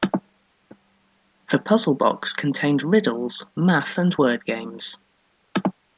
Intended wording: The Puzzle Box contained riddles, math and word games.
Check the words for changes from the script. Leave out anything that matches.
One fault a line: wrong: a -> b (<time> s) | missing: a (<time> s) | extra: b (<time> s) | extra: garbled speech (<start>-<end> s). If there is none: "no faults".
no faults